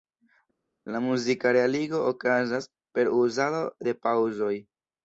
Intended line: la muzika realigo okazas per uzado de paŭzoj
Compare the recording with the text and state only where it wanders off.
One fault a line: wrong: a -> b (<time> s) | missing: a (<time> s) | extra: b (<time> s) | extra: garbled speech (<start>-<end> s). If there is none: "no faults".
no faults